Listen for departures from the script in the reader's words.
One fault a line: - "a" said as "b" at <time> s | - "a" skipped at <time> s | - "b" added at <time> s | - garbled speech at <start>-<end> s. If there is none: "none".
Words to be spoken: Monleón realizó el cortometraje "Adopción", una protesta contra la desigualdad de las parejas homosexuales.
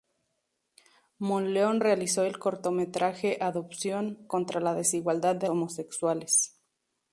- "una protesta" skipped at 4.3 s
- "las parejas" skipped at 5.5 s